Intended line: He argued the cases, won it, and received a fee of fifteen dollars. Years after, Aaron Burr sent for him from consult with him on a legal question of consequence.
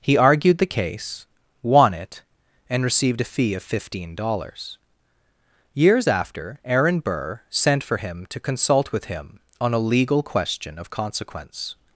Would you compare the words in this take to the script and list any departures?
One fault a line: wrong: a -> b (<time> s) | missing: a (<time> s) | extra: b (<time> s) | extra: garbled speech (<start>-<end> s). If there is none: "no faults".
wrong: cases -> case (0.7 s)
wrong: from -> to (8.3 s)